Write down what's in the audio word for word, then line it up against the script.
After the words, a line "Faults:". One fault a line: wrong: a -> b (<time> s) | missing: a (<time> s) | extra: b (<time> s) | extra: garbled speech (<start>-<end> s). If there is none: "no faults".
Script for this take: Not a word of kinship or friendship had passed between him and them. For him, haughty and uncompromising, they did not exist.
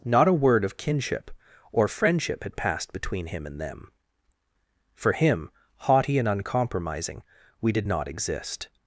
Not a word of kinship or friendship had passed between him and them. For him, haughty and uncompromising, we did not exist.
Faults:
wrong: they -> we (7.6 s)